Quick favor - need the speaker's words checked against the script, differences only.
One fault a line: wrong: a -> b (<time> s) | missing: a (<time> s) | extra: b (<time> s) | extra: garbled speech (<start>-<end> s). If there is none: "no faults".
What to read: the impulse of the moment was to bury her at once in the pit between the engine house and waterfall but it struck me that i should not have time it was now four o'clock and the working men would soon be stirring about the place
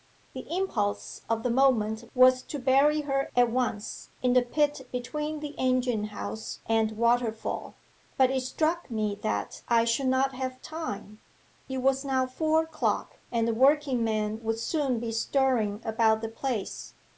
no faults